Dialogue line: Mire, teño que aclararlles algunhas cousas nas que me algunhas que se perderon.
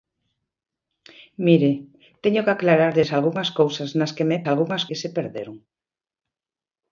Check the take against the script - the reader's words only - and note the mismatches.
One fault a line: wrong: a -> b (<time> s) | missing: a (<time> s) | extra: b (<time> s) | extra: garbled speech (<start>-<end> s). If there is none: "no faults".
no faults